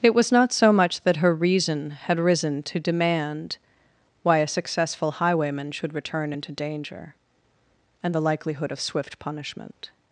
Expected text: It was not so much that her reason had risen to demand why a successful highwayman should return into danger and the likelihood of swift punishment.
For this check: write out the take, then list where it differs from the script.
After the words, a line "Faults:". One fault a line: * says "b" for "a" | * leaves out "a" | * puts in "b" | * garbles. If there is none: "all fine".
It was not so much that her reason had risen to demand why a successful highwayman should return into danger and the likelihood of swift punishment.
Faults:
all fine